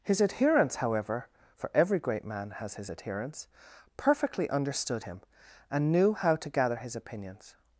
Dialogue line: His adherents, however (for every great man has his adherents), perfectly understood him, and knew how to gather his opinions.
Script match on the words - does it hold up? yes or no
yes